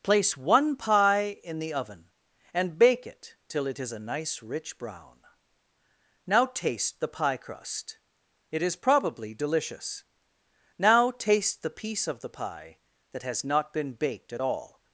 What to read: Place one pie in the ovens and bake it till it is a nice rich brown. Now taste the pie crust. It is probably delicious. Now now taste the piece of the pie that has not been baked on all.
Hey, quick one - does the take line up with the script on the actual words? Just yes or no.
no